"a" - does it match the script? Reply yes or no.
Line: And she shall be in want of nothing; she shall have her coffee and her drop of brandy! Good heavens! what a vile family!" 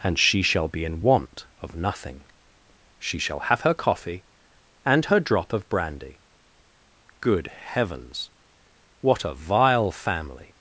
yes